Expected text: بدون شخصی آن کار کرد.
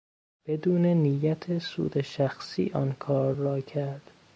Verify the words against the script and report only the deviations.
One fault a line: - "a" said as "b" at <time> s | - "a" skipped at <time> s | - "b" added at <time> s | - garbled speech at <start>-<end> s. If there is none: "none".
- "نیت سود" added at 0.8 s
- "را" added at 3.3 s